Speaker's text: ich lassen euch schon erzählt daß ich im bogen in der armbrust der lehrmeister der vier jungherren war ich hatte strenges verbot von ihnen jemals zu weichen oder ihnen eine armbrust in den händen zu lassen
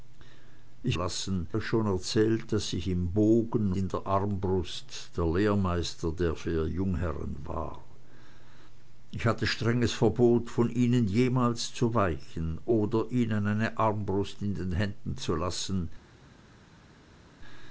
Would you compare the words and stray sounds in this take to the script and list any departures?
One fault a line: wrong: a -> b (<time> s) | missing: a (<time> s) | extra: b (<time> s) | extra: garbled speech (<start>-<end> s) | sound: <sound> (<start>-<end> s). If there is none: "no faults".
no faults